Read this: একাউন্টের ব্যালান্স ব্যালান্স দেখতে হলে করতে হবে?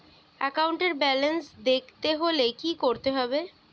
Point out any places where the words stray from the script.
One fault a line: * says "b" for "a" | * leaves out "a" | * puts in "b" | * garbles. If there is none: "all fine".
* leaves out "ব্যালান্স"
* puts in "কি"